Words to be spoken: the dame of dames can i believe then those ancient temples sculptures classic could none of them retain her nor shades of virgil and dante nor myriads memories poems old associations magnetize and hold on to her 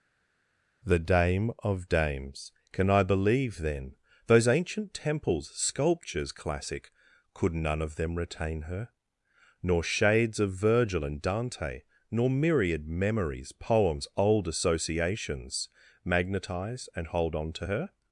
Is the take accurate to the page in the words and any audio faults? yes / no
no